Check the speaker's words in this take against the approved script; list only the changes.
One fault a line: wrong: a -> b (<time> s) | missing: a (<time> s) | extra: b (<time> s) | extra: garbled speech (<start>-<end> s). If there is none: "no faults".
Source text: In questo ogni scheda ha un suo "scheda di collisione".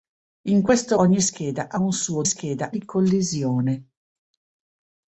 no faults